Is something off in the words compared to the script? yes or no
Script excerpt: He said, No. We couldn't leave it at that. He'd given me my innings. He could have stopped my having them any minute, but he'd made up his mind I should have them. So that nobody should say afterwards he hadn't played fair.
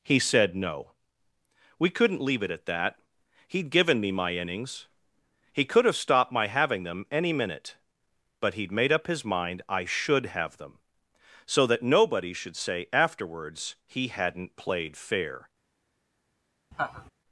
no